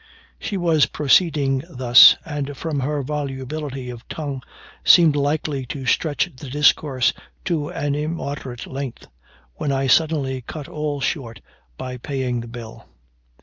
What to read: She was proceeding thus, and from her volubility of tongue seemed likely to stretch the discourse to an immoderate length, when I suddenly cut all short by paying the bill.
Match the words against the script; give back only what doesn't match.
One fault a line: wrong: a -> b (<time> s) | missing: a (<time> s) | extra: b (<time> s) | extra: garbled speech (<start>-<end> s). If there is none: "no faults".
no faults